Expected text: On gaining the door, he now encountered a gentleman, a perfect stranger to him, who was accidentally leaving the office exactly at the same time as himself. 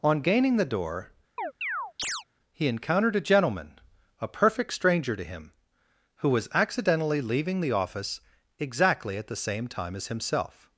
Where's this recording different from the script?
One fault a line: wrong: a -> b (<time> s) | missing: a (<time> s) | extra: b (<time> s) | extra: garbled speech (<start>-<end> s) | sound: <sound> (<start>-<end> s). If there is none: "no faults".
sound: chirp (1.4-2.2 s)
missing: now (2.7 s)